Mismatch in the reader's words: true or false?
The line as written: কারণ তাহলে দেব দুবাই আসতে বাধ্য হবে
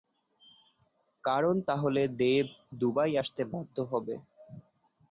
false